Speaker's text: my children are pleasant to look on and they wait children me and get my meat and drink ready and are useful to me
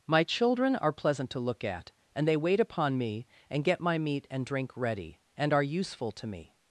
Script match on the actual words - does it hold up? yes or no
no